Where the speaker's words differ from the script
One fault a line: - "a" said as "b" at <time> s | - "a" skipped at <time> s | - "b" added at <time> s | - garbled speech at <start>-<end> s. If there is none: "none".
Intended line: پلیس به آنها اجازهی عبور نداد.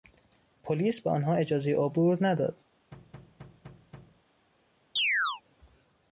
none